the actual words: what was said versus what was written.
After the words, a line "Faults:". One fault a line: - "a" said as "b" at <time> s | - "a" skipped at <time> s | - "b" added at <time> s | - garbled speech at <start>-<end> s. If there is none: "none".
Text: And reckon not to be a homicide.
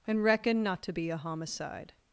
And reckon not to be a homicide.
Faults:
none